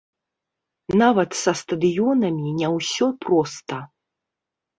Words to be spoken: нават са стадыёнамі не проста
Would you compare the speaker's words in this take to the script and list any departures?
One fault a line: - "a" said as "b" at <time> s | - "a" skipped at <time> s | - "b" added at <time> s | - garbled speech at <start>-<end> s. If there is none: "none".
- "ўсё" added at 2.8 s